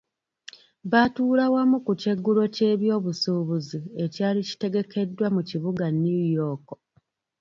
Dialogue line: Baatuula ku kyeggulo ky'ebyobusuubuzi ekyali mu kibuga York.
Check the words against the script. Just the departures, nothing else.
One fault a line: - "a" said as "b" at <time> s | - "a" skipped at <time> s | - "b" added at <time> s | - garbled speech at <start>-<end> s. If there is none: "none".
- "wamu" added at 1.5 s
- "kitegekeddwa" added at 4.5 s
- "New" added at 6.0 s